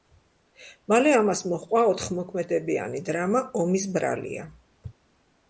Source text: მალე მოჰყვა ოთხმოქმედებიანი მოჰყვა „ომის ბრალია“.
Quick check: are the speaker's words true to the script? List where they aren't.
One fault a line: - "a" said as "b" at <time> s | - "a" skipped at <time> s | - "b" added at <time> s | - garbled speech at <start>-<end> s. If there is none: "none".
- "ამას" added at 1.2 s
- "მოჰყვა" said as "დრამა" at 3.1 s